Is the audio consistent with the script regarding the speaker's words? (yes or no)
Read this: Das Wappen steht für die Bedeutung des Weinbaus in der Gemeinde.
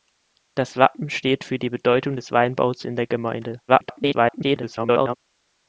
no